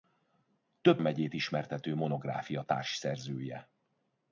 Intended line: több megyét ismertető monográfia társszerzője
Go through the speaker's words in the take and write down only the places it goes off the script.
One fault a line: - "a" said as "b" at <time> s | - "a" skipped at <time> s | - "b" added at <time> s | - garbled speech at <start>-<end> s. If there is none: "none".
none